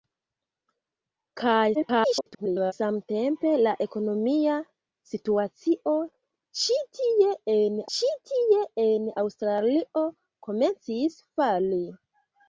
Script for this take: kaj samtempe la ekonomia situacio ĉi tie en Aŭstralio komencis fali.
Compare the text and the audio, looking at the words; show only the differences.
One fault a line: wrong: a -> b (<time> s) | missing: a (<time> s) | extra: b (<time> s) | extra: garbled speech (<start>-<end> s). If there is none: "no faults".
extra: garbled speech (1.7-2.7 s)
extra: ĉi tie en (8.0 s)